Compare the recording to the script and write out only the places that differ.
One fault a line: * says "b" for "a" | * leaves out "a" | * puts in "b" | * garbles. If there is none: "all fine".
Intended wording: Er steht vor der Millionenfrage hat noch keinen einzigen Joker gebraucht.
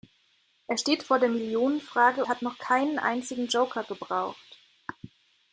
all fine